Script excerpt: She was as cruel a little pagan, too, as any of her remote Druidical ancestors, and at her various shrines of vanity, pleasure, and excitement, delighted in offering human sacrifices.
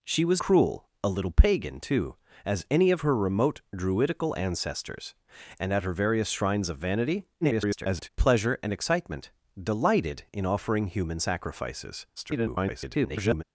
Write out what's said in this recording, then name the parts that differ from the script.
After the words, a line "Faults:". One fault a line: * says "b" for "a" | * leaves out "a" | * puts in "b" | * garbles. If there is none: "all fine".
She was cruel a little pagan, too, as any of her remote Druidical ancestors, and at her various shrines of vanity, [garbled] pleasure, and excitement, delighted in offering human sacrifices. [garbled]
Faults:
* leaves out "as"
* garbles
* garbles